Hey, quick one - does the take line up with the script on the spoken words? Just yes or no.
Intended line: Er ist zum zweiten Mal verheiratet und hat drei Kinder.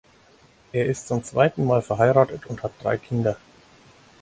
yes